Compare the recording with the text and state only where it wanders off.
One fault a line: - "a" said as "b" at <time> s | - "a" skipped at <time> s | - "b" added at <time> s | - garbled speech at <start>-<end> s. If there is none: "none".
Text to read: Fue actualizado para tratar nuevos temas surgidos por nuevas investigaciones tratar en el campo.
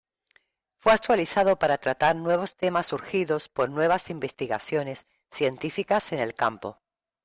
- "tratar" said as "científicas" at 5.3 s